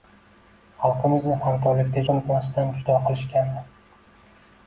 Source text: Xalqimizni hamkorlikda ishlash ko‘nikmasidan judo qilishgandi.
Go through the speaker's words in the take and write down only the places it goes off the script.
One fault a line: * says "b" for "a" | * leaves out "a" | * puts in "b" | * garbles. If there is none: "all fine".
* leaves out "ishlash"